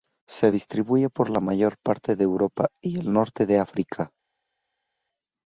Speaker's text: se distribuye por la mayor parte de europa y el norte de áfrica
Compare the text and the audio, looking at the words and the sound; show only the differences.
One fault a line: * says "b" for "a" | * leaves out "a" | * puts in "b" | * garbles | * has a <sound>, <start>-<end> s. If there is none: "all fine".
all fine